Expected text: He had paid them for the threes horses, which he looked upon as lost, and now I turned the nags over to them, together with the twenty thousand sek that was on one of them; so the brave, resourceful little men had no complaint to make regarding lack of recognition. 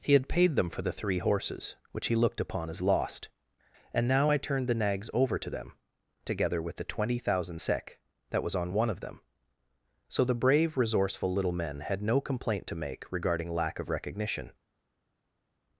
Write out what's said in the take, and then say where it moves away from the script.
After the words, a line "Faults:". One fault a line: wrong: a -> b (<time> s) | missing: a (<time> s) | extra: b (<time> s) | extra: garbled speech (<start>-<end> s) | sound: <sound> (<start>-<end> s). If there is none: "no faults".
He had paid them for the three horses, which he looked upon as lost, and now I turned the nags over to them, together with the twenty thousand sek that was on one of them; so the brave, resourceful little men had no complaint to make regarding lack of recognition.
Faults:
wrong: threes -> three (0.9 s)